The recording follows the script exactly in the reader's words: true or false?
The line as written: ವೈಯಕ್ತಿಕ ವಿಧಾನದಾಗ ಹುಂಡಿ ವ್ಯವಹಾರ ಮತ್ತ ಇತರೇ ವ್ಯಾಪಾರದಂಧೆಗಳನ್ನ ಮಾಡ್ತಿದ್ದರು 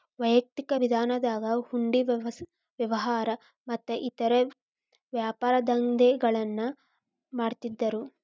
true